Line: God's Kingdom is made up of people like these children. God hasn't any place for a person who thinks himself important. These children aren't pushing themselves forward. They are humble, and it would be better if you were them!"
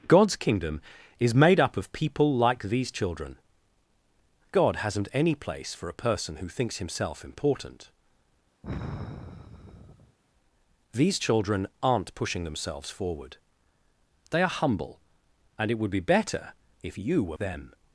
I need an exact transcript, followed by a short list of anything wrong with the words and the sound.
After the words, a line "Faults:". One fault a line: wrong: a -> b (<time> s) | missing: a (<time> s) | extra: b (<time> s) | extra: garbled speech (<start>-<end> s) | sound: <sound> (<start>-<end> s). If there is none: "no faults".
God's Kingdom is made up of people like these children. God hasn't any place for a person who thinks himself important. These children aren't pushing themselves forward. They are humble, and it would be better if you were them!"
Faults:
sound: sigh (8.6-10.2 s)